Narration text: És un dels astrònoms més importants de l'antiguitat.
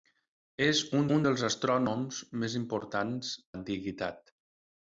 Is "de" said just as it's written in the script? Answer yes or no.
no